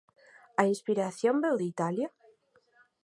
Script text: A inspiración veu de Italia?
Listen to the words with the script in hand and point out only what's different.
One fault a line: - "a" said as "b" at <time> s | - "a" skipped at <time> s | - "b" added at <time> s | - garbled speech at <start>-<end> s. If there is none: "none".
none